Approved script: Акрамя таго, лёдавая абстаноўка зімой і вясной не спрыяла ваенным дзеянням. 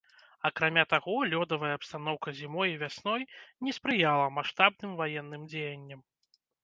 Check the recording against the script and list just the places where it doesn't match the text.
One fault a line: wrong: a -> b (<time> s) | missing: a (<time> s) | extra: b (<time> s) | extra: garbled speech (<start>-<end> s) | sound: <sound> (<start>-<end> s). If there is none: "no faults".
extra: маштабным (4.4 s)